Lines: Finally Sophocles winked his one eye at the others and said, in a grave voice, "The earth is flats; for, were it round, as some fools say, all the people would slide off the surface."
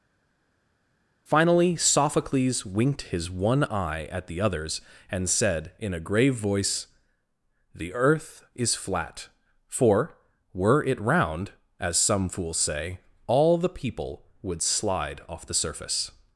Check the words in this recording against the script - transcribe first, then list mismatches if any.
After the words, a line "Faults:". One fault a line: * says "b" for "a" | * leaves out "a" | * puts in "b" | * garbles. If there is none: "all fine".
Finally Sophocles winked his one eye at the others and said, in a grave voice, "The earth is flat; for, were it round, as some fools say, all the people would slide off the surface."
Faults:
* says "flat" for "flats"